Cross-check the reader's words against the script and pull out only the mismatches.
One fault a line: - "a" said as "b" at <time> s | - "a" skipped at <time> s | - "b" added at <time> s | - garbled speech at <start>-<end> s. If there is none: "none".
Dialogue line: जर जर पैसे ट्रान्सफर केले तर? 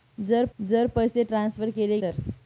none